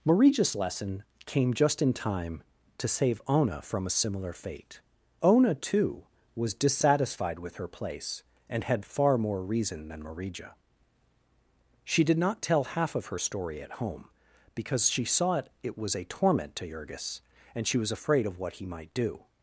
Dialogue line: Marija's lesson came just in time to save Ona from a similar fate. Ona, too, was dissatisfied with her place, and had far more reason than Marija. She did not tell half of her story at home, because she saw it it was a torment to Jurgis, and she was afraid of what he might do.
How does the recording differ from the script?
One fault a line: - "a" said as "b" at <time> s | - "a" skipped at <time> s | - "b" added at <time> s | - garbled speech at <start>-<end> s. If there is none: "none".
none